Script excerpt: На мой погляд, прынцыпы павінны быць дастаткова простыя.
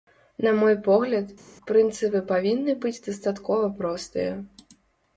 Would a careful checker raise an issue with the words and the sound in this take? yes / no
no